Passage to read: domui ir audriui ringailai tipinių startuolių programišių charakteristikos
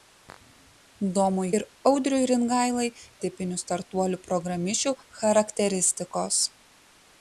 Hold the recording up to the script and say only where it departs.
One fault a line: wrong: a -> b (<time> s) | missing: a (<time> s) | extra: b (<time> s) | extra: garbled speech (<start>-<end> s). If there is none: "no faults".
no faults